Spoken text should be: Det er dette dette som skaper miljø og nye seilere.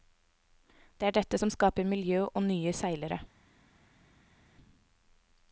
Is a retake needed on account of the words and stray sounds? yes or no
yes